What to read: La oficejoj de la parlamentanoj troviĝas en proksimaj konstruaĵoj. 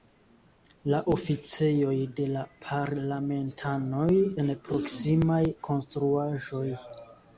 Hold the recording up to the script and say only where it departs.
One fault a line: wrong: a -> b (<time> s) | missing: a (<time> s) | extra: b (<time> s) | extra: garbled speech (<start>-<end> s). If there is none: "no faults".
missing: troviĝas (4.1 s)